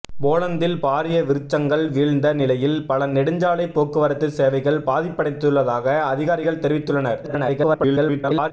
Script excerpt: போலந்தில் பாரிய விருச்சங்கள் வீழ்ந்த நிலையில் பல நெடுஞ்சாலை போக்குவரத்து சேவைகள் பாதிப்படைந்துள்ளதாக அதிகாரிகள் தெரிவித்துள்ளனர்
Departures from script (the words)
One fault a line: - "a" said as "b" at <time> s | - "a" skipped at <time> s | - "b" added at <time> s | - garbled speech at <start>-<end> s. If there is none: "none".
- garbled speech at 7.2-8.5 s